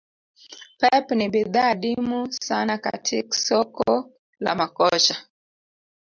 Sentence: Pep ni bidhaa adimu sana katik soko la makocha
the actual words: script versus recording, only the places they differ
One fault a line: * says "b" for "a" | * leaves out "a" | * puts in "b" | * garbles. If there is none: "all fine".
all fine